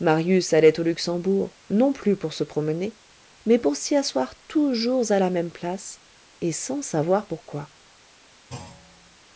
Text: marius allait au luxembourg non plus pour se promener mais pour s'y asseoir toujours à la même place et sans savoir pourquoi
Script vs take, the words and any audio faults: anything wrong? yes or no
yes